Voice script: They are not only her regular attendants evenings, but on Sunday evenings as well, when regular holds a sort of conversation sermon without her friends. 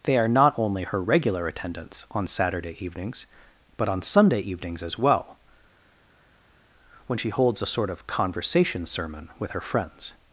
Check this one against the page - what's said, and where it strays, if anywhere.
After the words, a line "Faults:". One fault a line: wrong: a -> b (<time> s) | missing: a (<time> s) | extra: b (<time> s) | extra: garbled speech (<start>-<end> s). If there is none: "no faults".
They are not only her regular attendants on Saturday evenings, but on Sunday evenings as well, when she holds a sort of conversation sermon with her friends.
Faults:
extra: on Saturday (2.1 s)
wrong: regular -> she (7.2 s)
wrong: without -> with (9.4 s)